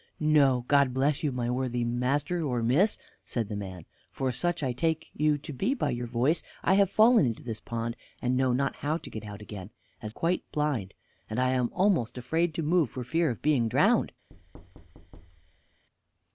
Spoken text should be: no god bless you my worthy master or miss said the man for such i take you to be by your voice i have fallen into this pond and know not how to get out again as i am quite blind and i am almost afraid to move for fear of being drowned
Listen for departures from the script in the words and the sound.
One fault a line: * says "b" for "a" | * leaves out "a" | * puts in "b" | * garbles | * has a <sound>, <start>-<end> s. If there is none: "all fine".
* leaves out "i am"
* has a thud, 14.3-15.8 s